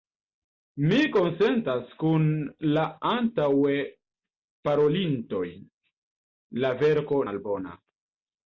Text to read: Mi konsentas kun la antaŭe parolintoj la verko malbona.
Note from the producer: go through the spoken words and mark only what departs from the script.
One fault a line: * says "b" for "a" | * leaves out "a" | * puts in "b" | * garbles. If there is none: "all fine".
all fine